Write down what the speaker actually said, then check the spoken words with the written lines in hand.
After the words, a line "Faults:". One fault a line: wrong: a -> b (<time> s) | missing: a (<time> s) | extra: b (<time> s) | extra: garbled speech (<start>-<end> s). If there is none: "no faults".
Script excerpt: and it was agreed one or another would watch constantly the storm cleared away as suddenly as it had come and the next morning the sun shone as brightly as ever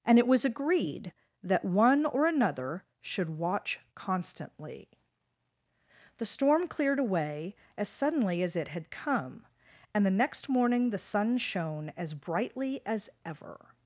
and it was agreed that one or another should watch constantly the storm cleared away as suddenly as it had come and the next morning the sun shone as brightly as ever
Faults:
extra: that (1.4 s)
wrong: would -> should (3.0 s)